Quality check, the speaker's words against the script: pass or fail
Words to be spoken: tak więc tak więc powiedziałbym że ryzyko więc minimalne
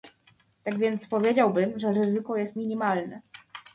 fail